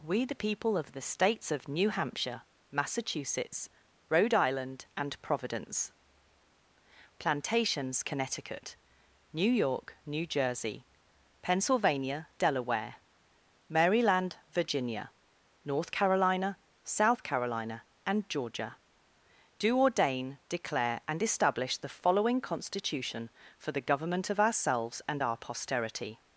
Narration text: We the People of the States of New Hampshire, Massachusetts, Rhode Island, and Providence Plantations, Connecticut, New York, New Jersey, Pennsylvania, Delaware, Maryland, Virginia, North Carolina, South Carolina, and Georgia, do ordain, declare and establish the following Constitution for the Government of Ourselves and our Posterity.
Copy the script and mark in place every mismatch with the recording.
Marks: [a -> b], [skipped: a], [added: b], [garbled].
We the People of the States of New Hampshire, Massachusetts, Rhode Island, and Providence Plantations, Connecticut, New York, New Jersey, Pennsylvania, Delaware, Maryland, Virginia, North Carolina, South Carolina, and Georgia, do ordain, declare and establish the following Constitution for the Government of Ourselves and our Posterity.